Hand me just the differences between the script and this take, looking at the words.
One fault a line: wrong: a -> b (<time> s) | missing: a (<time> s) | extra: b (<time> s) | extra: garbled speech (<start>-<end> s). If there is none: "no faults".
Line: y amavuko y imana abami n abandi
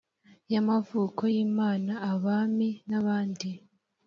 no faults